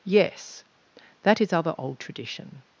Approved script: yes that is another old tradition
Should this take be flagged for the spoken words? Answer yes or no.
yes